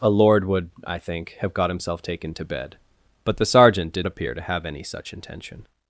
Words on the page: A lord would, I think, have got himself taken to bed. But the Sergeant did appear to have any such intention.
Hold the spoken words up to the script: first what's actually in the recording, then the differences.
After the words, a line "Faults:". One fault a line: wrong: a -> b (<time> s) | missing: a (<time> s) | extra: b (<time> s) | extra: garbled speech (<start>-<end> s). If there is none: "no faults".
A lord would, I think, have got himself taken to bed. But the Sergeant did appear to have any such intention.
Faults:
no faults